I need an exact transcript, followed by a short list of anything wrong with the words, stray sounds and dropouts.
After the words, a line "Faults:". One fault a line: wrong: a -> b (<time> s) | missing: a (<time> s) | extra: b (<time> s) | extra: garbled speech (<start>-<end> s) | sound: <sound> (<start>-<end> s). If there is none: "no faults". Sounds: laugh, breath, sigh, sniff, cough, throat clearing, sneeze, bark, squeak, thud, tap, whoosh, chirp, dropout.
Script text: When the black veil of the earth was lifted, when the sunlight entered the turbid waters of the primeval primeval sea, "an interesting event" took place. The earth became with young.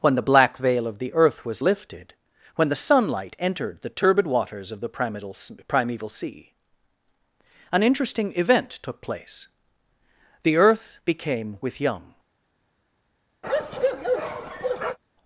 When the black veil of the earth was lifted, when the sunlight entered the turbid waters of the primeval primeval sea, "an interesting event" took place. The earth became with young.
Faults:
sound: bark (13.4-15.0 s)